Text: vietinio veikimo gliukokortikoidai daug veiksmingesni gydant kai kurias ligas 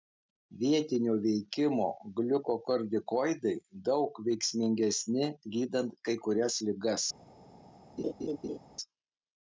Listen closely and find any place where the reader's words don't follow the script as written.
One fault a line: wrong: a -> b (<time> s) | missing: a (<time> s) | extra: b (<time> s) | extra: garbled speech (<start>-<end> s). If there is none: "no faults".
no faults